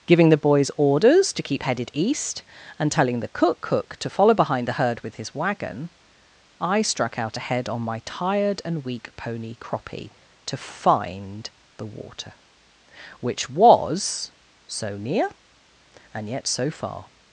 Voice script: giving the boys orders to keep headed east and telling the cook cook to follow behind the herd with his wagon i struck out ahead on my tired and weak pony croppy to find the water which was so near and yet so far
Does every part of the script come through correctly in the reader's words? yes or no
yes